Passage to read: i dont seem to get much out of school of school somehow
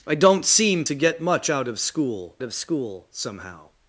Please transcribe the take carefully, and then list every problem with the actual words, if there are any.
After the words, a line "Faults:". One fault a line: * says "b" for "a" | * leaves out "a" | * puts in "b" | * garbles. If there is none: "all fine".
i dont seem to get much out of school of school somehow
Faults:
all fine